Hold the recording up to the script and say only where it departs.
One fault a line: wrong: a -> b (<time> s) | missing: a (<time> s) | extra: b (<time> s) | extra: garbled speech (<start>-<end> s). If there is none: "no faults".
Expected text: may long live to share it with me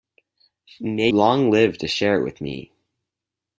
no faults